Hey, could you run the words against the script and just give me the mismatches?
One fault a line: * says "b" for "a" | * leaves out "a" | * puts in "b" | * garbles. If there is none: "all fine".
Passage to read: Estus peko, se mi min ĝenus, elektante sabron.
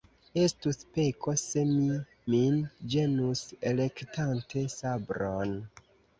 all fine